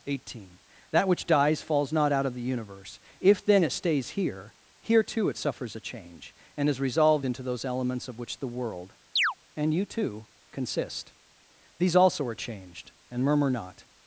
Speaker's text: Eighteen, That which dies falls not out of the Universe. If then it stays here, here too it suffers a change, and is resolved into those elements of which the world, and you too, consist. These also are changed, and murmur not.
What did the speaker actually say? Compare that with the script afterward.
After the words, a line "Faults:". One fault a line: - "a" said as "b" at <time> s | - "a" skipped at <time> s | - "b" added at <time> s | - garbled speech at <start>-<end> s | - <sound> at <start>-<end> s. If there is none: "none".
Eighteen, That which dies falls not out of the Universe. If then it stays here, here too it suffers a change, and is resolved into those elements of which the world, and you too, consist. These also are changed, and murmur not.
Faults:
- chirp at 9.2-9.3 s